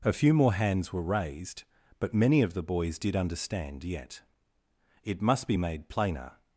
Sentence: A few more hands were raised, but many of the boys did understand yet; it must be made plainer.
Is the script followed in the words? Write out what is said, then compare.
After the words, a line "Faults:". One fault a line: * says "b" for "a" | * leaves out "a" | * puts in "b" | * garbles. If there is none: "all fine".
A few more hands were raised, but many of the boys did understand yet; it must be made plainer.
Faults:
all fine